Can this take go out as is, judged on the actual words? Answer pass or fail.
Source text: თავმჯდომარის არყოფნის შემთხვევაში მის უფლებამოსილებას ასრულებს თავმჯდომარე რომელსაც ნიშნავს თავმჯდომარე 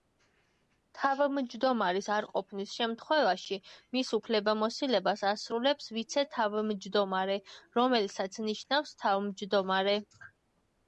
fail